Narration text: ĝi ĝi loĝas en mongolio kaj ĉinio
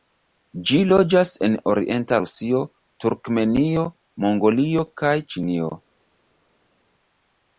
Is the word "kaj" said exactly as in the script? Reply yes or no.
yes